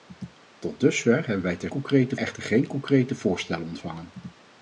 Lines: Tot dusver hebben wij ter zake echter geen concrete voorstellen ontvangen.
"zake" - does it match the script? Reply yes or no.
no